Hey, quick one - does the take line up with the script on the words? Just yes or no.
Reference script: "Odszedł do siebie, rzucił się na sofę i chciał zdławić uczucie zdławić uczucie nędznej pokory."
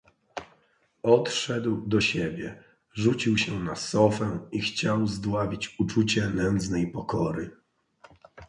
no